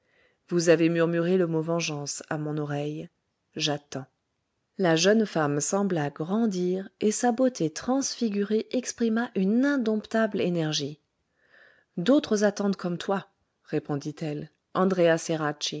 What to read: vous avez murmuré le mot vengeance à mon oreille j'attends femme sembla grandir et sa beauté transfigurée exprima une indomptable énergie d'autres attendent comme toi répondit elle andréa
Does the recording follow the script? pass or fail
fail